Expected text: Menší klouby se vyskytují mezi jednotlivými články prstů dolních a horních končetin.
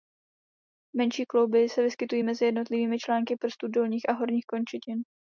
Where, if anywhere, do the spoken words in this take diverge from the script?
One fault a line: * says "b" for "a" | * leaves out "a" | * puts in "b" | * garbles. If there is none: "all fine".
all fine